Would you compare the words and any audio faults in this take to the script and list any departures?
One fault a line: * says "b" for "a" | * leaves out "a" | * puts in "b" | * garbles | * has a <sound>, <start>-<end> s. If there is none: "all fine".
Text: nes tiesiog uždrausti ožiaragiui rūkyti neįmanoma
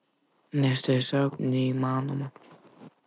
* leaves out "uždrausti ožiaragiui rūkyti"